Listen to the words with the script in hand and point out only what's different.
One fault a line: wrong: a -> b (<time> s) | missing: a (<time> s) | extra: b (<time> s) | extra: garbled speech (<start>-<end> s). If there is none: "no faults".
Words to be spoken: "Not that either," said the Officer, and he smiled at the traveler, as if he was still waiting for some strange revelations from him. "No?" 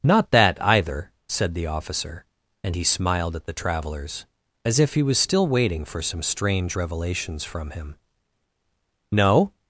wrong: traveler -> travelers (3.5 s)